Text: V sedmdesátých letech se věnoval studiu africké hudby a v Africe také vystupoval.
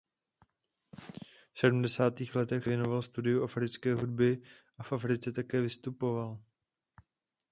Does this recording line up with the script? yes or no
no